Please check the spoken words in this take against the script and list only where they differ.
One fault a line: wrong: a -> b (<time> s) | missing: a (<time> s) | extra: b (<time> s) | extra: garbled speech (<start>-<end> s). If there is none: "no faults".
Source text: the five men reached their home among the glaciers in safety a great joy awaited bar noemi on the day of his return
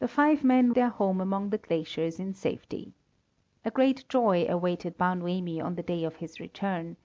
missing: reached (0.7 s)